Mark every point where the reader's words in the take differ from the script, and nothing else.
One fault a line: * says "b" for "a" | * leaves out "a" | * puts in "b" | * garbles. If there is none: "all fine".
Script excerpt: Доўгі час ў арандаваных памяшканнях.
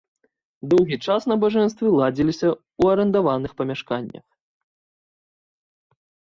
* puts in "набажэнствы ладзіліся"